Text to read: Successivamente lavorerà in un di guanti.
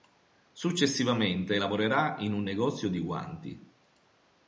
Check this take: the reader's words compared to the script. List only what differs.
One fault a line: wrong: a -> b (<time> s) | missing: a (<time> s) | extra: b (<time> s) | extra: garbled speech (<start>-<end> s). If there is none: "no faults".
extra: negozio (2.4 s)